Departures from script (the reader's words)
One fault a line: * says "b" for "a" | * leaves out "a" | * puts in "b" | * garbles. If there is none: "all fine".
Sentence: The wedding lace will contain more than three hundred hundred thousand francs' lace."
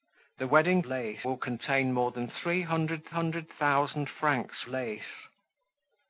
all fine